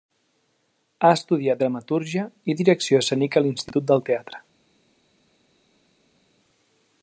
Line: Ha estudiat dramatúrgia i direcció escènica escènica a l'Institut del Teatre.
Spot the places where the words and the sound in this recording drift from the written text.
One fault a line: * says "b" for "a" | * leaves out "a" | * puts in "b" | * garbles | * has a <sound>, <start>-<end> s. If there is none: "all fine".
* leaves out "escènica"